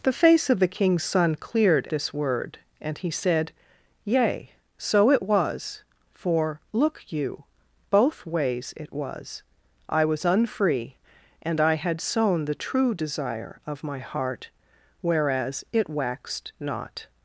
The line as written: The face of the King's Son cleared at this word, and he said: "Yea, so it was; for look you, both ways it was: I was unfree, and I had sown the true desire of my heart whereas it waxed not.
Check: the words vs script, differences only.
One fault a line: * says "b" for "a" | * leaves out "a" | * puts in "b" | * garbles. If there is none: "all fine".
* leaves out "at"